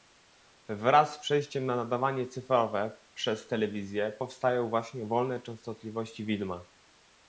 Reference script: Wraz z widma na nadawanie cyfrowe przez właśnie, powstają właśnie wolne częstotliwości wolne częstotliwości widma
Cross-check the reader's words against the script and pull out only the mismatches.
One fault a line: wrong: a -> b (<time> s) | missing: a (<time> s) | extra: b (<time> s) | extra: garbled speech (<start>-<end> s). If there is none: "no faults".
wrong: widma -> przejściem (1.2 s)
wrong: właśnie -> telewizję (3.5 s)
missing: wolne częstotliwości (6.3 s)